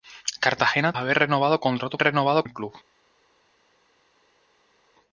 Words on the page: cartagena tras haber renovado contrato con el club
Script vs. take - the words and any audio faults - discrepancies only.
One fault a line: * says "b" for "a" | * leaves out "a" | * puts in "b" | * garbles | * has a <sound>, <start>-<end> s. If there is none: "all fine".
* leaves out "tras"
* says "renovado" for "con"